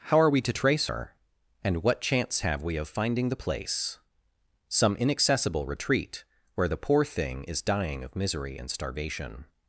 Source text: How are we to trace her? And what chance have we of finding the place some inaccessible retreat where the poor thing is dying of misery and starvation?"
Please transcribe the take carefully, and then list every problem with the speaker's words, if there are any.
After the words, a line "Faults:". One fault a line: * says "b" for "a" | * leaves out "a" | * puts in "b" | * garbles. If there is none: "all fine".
How are we to trace her? And what chance have we of finding the place some inaccessible retreat where the poor thing is dying of misery and starvation?"
Faults:
all fine